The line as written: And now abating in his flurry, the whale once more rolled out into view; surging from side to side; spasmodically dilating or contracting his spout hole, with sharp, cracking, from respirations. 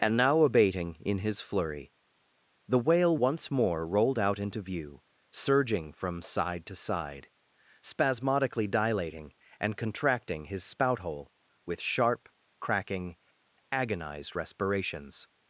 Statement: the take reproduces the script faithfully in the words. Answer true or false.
false